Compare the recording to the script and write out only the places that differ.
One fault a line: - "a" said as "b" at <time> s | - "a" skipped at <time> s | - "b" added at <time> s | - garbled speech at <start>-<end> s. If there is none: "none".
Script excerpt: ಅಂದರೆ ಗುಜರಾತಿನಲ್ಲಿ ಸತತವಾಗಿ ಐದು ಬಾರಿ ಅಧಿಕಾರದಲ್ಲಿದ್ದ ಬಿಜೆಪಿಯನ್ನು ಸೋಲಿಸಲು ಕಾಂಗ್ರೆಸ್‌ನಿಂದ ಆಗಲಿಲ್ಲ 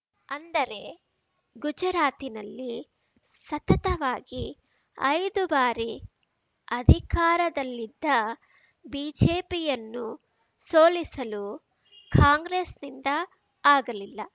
none